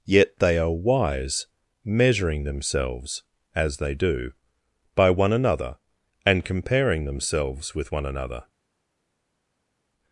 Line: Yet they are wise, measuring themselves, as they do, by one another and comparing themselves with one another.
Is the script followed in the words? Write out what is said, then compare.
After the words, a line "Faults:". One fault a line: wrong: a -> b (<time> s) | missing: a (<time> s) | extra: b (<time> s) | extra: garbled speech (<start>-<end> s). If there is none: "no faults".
Yet they are wise, measuring themselves, as they do, by one another and comparing themselves with one another.
Faults:
no faults